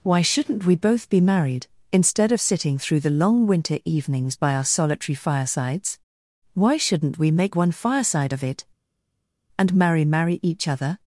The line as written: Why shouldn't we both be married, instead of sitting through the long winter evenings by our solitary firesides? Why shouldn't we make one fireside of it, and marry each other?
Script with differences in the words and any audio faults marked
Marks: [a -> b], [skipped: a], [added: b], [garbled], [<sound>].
Why shouldn't we both be married, instead of sitting through the long winter evenings by our solitary firesides? Why shouldn't we make one fireside of it, and marry [added: marry] each other?